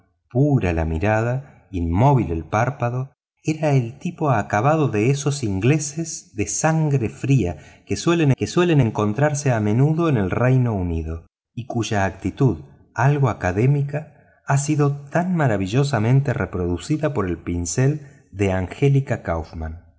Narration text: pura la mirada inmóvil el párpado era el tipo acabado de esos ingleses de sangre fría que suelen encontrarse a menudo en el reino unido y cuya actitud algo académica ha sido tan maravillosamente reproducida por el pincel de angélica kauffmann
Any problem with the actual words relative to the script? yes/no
yes